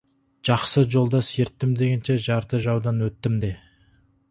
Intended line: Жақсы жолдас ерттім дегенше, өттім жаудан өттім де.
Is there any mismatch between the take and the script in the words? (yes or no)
yes